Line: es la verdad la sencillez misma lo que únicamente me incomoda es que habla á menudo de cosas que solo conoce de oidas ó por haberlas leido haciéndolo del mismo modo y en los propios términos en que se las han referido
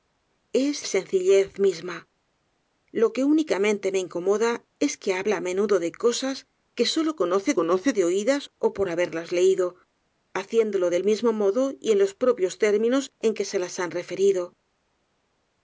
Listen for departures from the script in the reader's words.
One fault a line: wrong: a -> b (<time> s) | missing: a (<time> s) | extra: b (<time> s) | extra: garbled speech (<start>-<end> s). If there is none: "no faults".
missing: la verdad la (0.9 s)
extra: conoce (7.6 s)